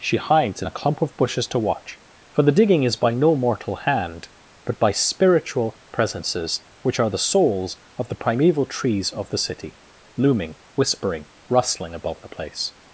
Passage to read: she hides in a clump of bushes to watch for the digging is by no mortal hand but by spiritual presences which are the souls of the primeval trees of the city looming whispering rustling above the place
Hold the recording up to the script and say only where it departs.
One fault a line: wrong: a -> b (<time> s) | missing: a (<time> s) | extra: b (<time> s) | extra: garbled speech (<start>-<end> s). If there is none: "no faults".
no faults